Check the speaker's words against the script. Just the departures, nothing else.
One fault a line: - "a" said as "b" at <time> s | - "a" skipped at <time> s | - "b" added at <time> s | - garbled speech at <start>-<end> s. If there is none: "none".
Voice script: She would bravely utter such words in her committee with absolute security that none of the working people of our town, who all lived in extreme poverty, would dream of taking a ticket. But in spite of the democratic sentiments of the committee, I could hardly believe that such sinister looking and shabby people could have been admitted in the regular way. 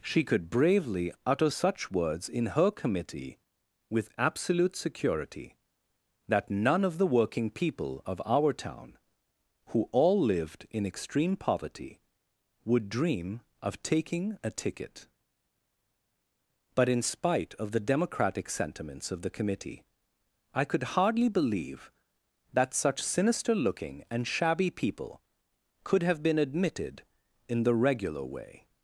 - "would" said as "could" at 0.2 s